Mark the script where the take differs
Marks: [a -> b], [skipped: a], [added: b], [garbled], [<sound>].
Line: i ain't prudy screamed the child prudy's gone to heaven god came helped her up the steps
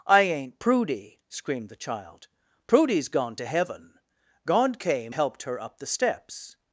i ain't prudy screamed the child prudy's gone to heaven god came helped her up the steps